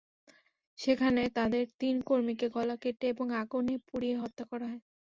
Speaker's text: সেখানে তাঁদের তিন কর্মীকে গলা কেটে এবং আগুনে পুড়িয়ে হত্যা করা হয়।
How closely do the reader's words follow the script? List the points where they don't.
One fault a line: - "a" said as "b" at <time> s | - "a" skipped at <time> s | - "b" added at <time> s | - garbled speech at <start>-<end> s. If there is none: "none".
none